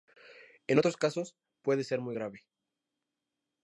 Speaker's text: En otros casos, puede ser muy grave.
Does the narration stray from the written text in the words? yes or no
no